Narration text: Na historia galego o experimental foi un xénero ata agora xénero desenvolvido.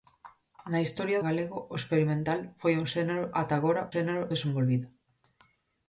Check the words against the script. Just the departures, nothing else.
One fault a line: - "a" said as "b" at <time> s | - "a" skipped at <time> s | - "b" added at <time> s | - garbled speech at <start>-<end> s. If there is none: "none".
none